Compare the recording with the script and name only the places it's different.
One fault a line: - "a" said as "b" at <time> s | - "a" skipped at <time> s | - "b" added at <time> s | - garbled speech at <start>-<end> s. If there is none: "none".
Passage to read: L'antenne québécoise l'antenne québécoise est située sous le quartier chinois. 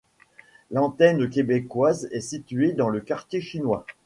- "l'antenne québécoise" skipped at 2.1 s
- "sous" said as "dans" at 2.7 s